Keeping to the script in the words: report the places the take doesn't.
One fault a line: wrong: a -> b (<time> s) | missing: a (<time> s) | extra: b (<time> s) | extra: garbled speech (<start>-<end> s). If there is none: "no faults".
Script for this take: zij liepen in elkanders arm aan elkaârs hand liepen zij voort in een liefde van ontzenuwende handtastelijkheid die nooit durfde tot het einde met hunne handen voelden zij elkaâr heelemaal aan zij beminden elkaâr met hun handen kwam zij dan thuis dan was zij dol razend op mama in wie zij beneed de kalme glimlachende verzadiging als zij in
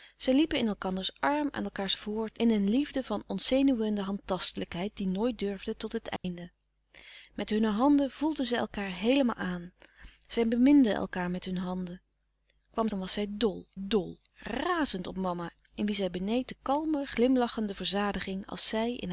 missing: hand liepen zij (1.9 s)
missing: zij (12.9 s)
missing: thuis dan (13.0 s)
extra: dol (13.8 s)